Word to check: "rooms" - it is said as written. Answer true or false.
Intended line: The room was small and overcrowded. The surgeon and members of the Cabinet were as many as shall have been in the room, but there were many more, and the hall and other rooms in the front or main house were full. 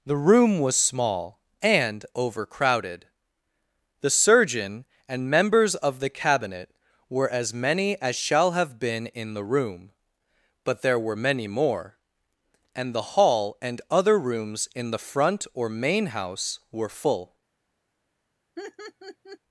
true